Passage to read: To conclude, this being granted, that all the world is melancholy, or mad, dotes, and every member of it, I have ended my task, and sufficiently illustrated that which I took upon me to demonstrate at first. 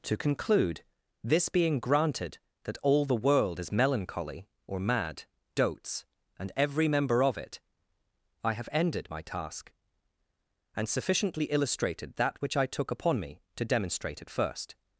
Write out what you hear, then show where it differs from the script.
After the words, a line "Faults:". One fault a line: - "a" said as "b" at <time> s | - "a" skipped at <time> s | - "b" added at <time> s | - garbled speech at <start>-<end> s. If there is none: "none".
To conclude, this being granted, that all the world is melancholy, or mad, dotes, and every member of it, I have ended my task, and sufficiently illustrated that which I took upon me to demonstrate at first.
Faults:
none